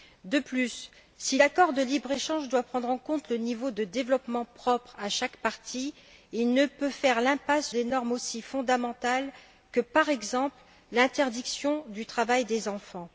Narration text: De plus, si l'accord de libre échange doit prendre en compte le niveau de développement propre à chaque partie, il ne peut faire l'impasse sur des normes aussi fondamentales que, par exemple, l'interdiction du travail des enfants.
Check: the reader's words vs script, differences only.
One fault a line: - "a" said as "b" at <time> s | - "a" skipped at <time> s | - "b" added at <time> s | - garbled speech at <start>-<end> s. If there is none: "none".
- "sur" skipped at 7.7 s